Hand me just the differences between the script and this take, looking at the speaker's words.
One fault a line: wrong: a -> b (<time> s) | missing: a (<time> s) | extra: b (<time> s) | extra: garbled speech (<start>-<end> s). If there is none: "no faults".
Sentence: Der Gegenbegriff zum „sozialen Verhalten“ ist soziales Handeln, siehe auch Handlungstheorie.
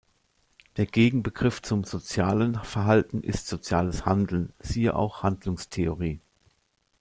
no faults